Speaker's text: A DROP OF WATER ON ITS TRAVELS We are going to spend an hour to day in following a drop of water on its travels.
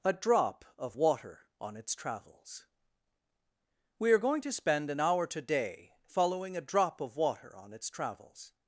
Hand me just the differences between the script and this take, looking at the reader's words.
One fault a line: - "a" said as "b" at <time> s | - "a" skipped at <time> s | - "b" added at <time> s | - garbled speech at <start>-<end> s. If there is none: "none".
- "to day in" said as "today" at 5.3 s